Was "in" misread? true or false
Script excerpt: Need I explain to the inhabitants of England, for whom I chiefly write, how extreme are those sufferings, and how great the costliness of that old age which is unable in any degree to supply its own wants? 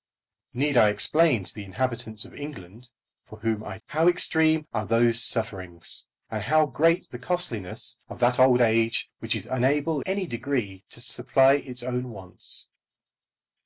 true